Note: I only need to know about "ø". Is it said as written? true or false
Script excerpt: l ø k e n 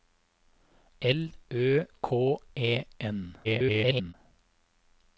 true